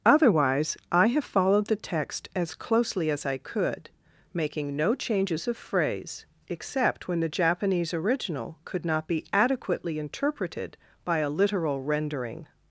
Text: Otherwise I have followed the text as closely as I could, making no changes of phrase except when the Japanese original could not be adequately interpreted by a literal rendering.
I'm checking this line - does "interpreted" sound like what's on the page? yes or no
yes